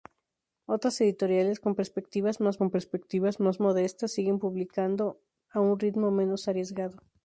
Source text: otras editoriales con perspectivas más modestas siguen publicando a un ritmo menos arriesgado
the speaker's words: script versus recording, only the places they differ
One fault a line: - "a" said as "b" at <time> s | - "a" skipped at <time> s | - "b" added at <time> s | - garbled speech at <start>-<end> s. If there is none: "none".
- "con perspectivas más" added at 2.5 s